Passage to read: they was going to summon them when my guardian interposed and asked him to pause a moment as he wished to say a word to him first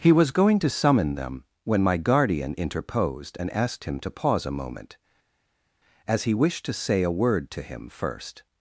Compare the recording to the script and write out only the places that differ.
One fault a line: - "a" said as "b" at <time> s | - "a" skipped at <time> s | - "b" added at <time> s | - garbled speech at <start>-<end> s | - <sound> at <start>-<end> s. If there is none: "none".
- "they" said as "he" at 0.0 s